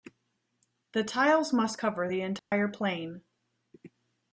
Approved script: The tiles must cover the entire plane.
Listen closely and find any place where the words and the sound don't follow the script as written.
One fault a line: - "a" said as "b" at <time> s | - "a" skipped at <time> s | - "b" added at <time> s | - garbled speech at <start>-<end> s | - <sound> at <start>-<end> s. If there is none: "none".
- dropout at 2.4-2.5 s